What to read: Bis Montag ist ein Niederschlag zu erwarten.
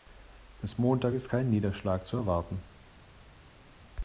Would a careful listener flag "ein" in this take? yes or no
yes